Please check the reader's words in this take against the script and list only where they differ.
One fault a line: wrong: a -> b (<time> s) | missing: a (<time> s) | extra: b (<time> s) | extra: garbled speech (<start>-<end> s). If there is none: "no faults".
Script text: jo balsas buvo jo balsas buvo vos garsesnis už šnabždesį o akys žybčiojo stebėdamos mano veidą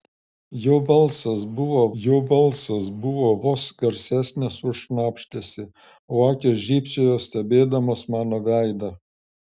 no faults